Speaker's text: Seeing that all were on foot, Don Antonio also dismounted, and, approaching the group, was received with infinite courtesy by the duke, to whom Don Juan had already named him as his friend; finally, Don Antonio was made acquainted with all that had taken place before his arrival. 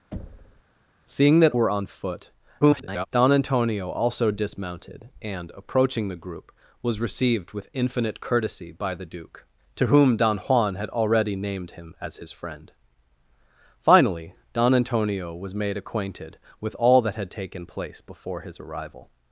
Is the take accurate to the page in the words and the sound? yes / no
no